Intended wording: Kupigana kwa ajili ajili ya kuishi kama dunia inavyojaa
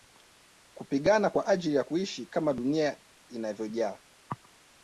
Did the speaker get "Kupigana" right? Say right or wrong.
right